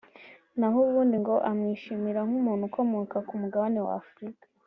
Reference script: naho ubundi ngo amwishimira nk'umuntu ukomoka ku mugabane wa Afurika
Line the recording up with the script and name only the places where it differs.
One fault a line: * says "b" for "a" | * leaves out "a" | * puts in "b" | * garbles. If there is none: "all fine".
all fine